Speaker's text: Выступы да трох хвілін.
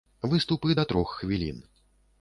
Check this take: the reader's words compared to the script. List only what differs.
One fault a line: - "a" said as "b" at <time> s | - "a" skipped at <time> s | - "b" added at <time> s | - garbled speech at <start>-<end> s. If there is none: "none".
none